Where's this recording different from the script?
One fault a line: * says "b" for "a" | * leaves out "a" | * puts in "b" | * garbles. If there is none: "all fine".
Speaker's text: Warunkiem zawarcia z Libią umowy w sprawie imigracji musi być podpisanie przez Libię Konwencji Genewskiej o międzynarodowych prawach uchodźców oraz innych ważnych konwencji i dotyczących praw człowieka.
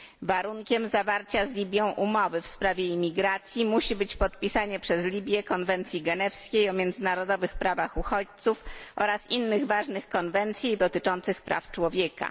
all fine